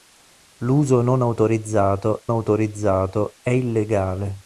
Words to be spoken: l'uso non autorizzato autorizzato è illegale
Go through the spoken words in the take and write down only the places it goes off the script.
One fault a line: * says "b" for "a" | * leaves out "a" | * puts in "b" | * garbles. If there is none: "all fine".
all fine